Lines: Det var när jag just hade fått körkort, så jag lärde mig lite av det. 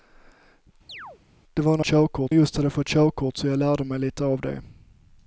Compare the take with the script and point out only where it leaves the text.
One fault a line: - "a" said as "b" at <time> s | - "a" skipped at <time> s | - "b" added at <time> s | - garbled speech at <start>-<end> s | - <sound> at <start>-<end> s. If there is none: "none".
- chirp at 0.9-1.2 s
- "jag" said as "körkort" at 1.8 s